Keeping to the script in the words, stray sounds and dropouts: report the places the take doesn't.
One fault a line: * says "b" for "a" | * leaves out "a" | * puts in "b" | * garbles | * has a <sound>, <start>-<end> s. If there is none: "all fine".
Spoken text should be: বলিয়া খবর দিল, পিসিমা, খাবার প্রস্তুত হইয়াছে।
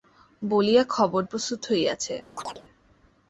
* leaves out "দিল পিসিমা খাবার"
* has a chirp, 2.4-2.6 s